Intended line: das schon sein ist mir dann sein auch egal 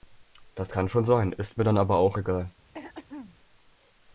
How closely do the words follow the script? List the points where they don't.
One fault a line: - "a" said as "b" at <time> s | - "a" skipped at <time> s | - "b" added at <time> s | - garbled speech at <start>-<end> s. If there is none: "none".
- "kann" added at 0.7 s
- "sein" said as "aber" at 1.8 s